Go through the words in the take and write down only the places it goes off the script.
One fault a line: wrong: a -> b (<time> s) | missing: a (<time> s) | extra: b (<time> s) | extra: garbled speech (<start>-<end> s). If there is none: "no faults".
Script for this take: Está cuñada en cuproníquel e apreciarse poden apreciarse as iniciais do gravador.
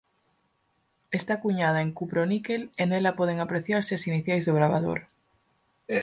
wrong: apreciarse -> nela (2.9 s)